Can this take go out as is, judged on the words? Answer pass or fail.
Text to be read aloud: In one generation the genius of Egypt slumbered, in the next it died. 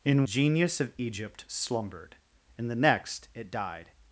fail